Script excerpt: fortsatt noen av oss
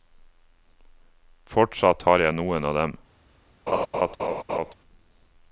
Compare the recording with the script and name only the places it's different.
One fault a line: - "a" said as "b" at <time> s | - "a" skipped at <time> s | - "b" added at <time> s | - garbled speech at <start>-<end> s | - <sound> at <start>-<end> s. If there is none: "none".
- "har jeg" added at 2.1 s
- "oss" said as "dem" at 2.8 s
- laugh at 3.7-4.7 s